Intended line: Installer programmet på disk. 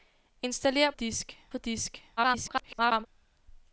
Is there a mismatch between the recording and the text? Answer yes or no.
yes